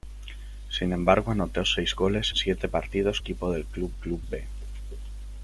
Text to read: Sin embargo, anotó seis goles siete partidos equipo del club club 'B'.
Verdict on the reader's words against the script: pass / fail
pass